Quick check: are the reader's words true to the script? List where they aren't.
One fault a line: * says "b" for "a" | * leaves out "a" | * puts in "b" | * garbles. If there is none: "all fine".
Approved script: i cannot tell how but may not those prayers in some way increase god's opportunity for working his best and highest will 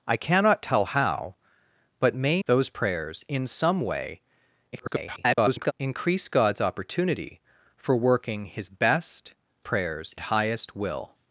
* leaves out "not"
* garbles
* says "prayers" for "and"